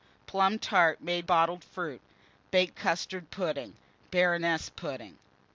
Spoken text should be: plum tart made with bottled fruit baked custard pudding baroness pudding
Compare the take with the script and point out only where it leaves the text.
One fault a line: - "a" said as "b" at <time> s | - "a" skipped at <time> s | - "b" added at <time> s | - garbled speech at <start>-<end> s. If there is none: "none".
- "with" skipped at 1.3 s